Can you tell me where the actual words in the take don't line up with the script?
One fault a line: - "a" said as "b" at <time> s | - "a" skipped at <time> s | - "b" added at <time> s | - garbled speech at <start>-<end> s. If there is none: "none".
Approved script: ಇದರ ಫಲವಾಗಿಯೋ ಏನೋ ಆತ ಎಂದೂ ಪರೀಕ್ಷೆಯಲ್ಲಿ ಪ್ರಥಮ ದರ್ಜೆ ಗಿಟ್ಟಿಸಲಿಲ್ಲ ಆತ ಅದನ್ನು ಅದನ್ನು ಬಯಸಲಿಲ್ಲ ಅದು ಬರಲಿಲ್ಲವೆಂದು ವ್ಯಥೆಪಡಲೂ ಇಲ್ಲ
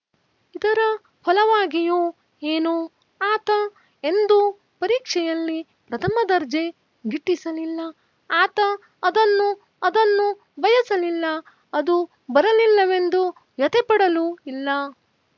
none